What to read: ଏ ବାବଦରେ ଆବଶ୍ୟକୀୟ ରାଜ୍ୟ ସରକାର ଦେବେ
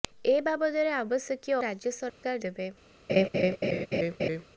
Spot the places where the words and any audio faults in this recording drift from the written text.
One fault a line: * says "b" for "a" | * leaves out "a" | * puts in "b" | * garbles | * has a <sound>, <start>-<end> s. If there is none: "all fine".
* has a dropout, 2.1-2.2 s
* has a laugh, 3.1-4.4 s